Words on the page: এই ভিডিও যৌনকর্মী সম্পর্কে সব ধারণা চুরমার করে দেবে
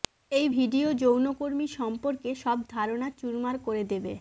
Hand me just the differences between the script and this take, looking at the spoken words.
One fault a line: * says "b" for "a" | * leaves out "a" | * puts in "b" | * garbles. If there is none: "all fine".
all fine